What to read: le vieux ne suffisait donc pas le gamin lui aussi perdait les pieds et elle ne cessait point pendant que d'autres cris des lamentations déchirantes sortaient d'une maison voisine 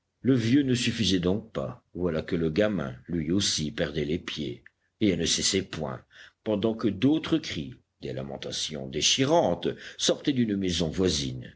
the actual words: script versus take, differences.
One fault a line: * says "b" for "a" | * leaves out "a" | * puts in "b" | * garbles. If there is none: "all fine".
* puts in "voilà que"